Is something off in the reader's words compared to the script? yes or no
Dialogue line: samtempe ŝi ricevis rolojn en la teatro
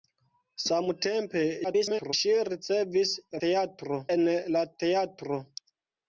yes